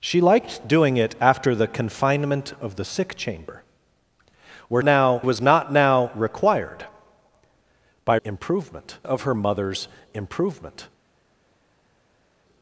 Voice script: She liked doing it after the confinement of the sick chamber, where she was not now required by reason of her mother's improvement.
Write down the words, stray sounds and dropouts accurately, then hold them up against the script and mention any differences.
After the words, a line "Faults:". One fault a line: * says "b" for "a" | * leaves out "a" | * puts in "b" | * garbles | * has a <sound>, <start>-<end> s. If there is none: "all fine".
She liked doing it after the confinement of the sick chamber, where now was not now required by improvement of her mother's improvement.
Faults:
* says "now" for "she"
* says "improvement" for "reason"